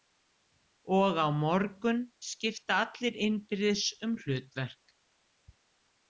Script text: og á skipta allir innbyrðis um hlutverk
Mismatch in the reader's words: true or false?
true